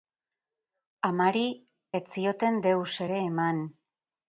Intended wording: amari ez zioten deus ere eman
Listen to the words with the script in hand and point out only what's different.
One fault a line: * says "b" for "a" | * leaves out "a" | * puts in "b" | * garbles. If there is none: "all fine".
all fine